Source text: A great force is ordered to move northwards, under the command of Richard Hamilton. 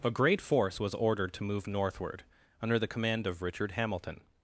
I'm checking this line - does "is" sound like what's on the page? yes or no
no